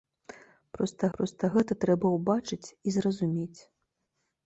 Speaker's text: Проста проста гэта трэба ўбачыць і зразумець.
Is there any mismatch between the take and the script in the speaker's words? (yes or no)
no